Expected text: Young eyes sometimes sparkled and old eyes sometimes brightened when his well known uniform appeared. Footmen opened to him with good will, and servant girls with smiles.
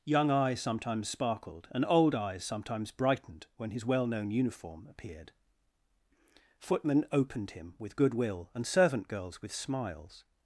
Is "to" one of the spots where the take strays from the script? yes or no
yes